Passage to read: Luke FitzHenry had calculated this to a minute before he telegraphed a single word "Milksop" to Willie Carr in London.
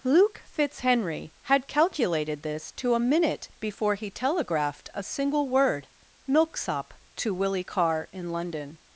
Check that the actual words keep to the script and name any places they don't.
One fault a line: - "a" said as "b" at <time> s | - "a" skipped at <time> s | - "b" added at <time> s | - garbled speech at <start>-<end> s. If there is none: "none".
none